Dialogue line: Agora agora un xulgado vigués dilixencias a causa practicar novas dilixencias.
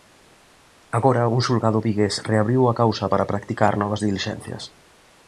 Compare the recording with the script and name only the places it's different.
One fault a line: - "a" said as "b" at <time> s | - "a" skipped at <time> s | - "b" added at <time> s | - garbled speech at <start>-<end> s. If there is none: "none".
- "agora" skipped at 1.2 s
- "dilixencias" said as "reabriu" at 2.3 s
- "para" added at 3.1 s